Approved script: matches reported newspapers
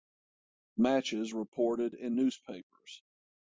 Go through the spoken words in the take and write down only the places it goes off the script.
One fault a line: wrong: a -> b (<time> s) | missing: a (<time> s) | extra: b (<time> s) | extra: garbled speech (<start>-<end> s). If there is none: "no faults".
extra: in (1.9 s)